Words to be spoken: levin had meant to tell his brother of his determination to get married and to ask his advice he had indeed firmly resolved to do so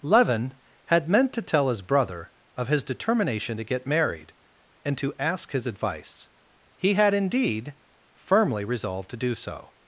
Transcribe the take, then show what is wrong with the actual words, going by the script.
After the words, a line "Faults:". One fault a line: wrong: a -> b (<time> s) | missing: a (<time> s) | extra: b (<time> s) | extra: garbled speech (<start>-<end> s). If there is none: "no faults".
levin had meant to tell his brother of his determination to get married and to ask his advice he had indeed firmly resolved to do so
Faults:
no faults